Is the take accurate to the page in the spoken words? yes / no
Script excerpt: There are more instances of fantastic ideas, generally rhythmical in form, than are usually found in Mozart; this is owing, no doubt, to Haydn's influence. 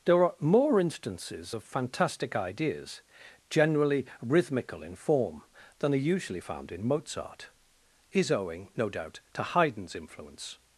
no